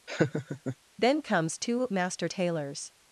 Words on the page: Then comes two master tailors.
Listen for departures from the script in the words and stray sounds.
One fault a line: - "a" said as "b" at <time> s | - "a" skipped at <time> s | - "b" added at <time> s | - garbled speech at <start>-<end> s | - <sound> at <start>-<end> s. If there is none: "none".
- laugh at 0.1-0.8 s